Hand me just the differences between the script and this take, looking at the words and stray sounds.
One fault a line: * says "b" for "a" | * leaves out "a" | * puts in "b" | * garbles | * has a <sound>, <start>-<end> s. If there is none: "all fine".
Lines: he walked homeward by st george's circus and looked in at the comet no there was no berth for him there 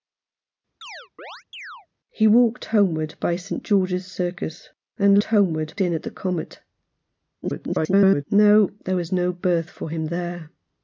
* has a chirp, 0.8-1.9 s
* says "homeward" for "looked"
* garbles